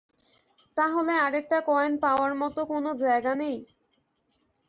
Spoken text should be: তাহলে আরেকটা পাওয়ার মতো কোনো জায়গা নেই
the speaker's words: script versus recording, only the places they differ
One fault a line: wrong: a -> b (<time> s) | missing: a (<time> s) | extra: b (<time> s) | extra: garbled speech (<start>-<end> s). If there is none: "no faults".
extra: কয়েন (1.7 s)